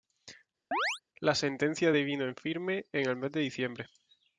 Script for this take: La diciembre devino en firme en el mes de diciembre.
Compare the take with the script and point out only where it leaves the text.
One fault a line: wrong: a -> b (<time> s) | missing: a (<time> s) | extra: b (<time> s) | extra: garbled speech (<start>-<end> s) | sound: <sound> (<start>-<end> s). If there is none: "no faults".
sound: chirp (0.7-1.0 s)
wrong: diciembre -> sentencia (1.4 s)